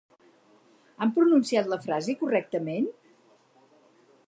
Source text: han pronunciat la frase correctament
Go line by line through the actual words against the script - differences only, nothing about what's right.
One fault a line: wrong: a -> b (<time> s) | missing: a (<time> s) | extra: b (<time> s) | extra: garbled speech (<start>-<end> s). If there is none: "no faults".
no faults